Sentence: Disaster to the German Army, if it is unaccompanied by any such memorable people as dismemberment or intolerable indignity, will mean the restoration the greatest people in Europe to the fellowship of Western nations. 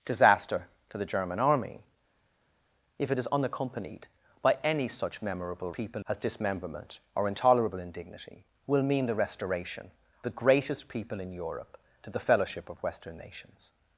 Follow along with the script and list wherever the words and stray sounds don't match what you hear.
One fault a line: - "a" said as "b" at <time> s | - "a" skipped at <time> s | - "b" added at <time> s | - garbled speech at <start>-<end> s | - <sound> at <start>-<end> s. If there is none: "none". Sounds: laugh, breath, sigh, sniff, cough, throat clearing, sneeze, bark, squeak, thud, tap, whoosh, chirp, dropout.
none